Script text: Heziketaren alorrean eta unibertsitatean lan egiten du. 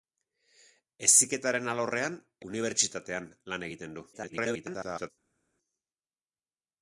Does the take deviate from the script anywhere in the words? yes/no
yes